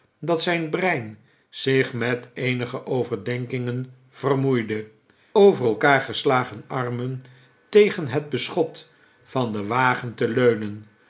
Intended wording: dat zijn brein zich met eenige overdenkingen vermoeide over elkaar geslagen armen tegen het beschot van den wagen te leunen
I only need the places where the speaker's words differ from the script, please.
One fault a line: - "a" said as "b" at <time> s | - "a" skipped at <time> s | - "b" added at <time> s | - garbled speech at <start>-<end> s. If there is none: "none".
none